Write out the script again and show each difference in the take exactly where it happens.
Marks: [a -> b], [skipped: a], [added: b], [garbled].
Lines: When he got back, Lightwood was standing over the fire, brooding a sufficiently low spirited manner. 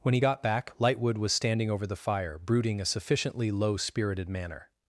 When he got back, Lightwood was standing over the fire, brooding a sufficiently low spirited manner.